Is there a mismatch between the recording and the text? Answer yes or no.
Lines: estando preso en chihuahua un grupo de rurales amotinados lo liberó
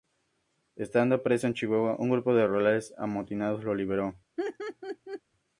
no